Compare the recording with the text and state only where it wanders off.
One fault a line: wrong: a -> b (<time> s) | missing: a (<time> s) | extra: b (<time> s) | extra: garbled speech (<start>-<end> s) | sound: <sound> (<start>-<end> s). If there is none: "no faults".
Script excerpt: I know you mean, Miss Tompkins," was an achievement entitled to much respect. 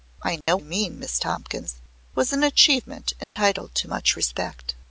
sound: dropout (0.4-0.5 s)
sound: dropout (3.2-3.4 s)